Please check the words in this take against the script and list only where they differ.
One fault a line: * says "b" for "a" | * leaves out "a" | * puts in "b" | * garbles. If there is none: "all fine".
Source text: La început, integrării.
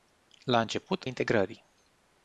all fine